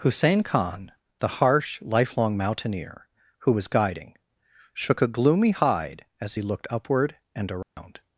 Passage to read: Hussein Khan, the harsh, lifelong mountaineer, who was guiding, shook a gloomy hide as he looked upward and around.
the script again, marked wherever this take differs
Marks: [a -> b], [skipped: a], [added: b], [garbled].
Hussein Khan, the harsh, lifelong mountaineer, who was guiding, shook a gloomy hide as he looked upward and around.